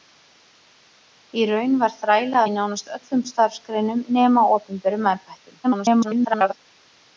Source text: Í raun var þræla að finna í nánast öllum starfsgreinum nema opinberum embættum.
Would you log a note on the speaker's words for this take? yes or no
yes